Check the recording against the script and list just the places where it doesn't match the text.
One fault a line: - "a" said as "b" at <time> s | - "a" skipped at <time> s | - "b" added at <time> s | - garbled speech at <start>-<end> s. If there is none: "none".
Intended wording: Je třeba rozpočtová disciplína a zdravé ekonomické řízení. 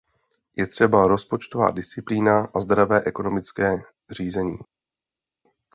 none